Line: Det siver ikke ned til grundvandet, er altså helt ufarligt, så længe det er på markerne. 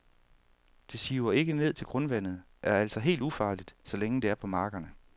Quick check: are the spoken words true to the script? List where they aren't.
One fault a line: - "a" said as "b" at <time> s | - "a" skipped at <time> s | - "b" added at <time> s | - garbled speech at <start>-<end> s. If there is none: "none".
none